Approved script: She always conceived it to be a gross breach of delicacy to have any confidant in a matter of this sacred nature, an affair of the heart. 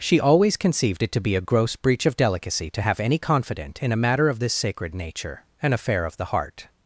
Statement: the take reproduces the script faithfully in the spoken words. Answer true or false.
true